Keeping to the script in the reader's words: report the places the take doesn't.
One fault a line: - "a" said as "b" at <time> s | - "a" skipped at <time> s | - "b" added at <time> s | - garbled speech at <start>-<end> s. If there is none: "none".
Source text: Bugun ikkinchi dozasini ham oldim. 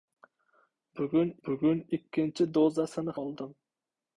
- "bugun" added at 1.5 s
- "ham" skipped at 3.2 s